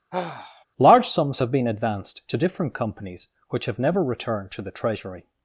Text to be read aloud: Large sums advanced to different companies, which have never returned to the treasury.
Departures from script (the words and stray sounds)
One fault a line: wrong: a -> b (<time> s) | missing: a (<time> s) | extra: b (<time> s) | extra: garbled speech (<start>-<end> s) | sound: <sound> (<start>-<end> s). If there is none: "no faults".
sound: sigh (0.1-0.6 s)
extra: have been (1.4 s)